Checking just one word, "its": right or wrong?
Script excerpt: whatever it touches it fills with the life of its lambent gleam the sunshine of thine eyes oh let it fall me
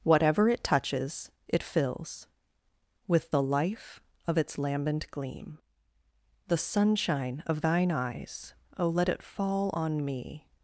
right